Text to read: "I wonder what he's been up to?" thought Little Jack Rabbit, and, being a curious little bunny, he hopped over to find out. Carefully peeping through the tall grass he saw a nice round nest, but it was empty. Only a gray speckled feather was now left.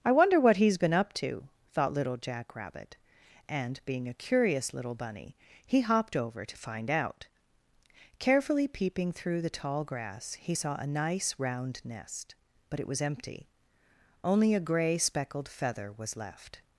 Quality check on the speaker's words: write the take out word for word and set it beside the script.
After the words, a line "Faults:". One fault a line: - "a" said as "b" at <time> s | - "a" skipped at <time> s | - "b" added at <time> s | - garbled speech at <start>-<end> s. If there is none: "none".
"I wonder what he's been up to?" thought Little Jack Rabbit, and, being a curious little bunny, he hopped over to find out. Carefully peeping through the tall grass he saw a nice round nest, but it was empty. Only a gray speckled feather was left.
Faults:
- "now" skipped at 16.2 s